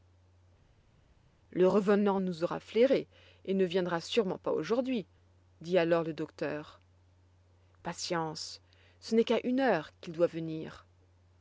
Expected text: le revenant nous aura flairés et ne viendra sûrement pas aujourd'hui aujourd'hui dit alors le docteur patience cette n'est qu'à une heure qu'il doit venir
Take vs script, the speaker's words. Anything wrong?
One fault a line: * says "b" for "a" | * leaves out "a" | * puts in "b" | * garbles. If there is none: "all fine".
* leaves out "aujourd'hui"
* says "ce" for "cette"